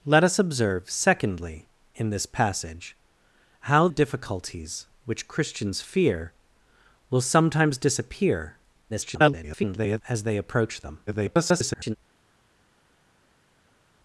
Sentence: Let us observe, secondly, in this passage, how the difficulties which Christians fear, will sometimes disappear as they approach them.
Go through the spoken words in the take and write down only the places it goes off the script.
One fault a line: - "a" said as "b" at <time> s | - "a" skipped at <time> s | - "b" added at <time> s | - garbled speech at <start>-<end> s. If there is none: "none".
- "the" skipped at 3.9 s
- garbled speech at 8.9-10.0 s
- garbled speech at 11.1-12.0 s